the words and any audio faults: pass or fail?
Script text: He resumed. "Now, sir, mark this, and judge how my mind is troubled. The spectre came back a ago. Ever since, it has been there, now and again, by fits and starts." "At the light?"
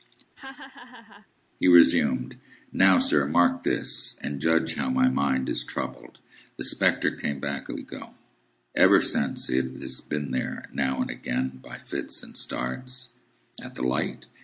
fail